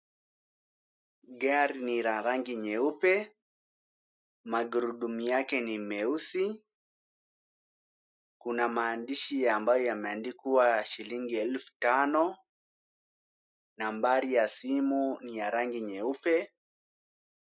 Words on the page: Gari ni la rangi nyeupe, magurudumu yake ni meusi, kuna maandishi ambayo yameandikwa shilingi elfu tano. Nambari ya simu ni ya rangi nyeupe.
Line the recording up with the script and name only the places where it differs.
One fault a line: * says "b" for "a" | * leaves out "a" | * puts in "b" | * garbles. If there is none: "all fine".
all fine